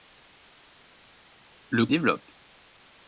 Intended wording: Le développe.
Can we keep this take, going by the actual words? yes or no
yes